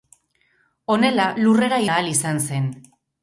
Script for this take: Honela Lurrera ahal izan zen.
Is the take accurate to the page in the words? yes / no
yes